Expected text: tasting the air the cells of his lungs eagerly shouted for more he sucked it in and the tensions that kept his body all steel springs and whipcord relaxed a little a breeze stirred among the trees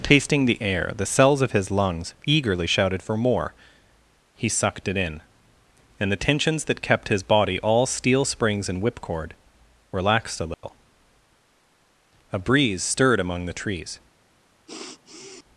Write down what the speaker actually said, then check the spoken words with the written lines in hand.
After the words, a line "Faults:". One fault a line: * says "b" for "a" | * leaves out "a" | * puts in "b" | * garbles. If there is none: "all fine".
tasting the air the cells of his lungs eagerly shouted for more he sucked it in and the tensions that kept his body all steel springs and whipcord relaxed a little a breeze stirred among the trees
Faults:
all fine